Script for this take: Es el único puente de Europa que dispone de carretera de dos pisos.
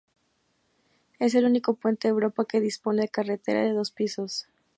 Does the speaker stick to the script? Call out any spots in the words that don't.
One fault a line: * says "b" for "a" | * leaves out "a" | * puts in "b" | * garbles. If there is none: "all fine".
all fine